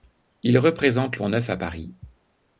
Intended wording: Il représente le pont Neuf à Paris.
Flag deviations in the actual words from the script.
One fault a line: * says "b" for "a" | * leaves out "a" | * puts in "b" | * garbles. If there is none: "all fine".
* leaves out "le"